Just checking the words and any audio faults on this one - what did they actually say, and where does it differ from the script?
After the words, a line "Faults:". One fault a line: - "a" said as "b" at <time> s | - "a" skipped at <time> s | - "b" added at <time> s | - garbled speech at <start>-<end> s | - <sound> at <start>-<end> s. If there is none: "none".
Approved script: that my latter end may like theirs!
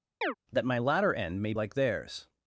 that my latter end may like theirs!
Faults:
- chirp at 0.2-0.3 s